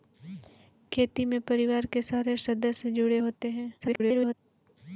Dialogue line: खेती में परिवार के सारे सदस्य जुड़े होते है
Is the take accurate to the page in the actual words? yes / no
no